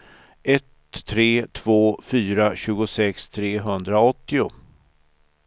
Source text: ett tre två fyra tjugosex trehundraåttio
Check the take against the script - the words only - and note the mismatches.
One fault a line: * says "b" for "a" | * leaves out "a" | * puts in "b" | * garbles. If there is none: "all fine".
all fine